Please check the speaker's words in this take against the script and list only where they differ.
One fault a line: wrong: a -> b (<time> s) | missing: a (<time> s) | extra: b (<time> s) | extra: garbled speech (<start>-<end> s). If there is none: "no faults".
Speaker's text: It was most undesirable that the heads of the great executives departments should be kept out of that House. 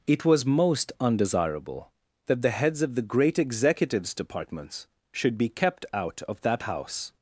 no faults